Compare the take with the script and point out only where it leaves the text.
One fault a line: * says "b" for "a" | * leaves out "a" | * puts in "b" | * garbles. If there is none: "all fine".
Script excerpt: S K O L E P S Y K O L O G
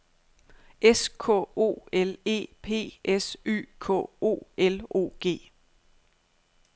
all fine